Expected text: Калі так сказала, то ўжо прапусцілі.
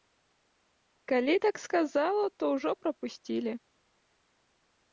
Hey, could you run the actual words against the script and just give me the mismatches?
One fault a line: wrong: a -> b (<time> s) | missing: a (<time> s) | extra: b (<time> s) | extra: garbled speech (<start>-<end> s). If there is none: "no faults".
no faults